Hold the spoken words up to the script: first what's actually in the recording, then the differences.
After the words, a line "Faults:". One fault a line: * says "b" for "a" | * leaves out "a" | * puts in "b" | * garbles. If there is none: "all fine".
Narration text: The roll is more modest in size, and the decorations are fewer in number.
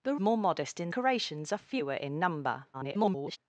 The more modest in decorations are fewer in number. [garbled]
Faults:
* leaves out "roll is"
* leaves out "size and the"
* garbles